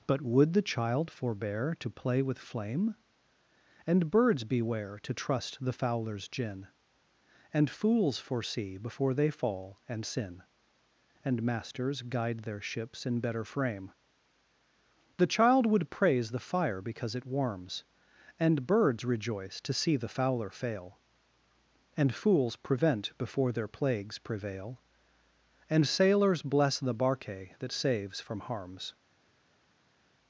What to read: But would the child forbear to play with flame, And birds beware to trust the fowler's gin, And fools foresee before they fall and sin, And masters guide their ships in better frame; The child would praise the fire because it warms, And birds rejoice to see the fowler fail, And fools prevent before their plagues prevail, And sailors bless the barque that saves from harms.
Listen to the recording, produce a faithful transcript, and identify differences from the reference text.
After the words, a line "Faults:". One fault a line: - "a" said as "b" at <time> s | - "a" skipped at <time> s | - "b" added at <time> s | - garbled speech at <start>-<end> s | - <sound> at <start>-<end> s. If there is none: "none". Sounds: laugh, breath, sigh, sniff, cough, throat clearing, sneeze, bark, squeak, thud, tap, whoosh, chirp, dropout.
But would the child forbear to play with flame, And birds beware to trust the fowler's gin, And fools foresee before they fall and sin, And masters guide their ships in better frame; The child would praise the fire because it warms, And birds rejoice to see the fowler fail, And fools prevent before their plagues prevail, And sailors bless the barque that saves from harms.
Faults:
none